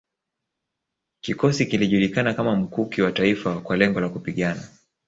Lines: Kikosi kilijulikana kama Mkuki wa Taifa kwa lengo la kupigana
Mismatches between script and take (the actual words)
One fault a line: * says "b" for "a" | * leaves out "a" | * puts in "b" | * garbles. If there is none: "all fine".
all fine